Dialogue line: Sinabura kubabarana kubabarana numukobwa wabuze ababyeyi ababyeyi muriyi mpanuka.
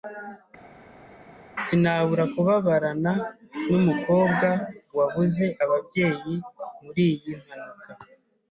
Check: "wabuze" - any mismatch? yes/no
no